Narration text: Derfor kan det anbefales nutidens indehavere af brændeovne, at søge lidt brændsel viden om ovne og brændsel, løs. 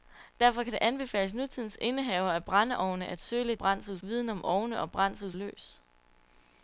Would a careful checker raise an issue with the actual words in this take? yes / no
no